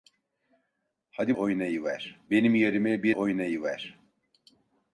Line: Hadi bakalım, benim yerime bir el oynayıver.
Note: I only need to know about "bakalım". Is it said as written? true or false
false